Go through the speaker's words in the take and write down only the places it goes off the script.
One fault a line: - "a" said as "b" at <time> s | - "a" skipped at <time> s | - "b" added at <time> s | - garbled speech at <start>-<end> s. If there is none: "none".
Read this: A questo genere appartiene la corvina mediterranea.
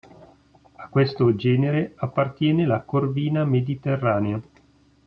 none